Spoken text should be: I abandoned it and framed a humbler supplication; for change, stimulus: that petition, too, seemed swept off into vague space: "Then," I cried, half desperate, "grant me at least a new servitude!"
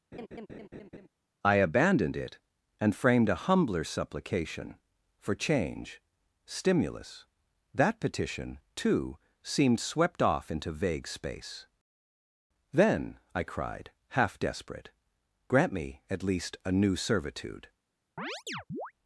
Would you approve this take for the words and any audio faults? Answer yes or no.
no